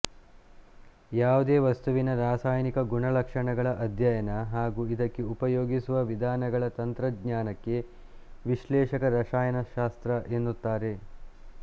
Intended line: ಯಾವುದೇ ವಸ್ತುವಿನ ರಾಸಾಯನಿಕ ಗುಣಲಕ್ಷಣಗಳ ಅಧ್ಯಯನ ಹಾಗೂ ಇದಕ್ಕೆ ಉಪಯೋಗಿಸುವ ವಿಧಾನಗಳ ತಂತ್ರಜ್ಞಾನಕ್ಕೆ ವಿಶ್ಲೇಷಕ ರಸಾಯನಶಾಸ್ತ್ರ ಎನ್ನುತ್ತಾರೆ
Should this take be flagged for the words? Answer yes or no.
no